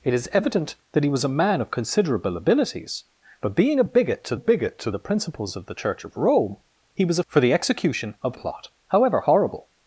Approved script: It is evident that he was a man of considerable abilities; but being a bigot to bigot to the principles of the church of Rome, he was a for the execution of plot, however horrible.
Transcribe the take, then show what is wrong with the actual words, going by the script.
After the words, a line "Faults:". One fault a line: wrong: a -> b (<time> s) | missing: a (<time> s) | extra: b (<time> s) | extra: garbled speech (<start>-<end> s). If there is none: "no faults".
It is evident that he was a man of considerable abilities; but being a bigot to bigot to the principles of the church of Rome, he was a for the execution of plot, however horrible.
Faults:
no faults